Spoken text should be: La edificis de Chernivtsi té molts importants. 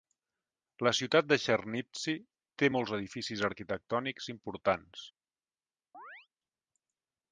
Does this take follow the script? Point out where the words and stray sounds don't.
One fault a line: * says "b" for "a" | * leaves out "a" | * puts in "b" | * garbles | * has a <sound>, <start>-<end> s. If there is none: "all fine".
* says "ciutat" for "edificis"
* puts in "edificis arquitectònics"
* has a chirp, 5.9-6.3 s